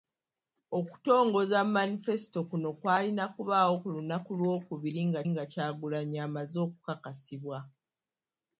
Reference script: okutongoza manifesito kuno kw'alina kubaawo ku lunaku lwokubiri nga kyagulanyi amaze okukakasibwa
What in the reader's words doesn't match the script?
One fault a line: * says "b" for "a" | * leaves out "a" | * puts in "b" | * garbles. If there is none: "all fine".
* puts in "nga"